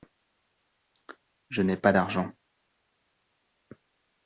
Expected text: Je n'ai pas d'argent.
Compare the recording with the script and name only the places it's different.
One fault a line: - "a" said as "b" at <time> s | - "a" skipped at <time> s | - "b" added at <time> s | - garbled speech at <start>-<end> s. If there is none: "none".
none